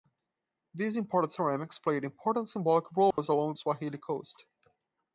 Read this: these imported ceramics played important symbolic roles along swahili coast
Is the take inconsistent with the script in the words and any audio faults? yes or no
yes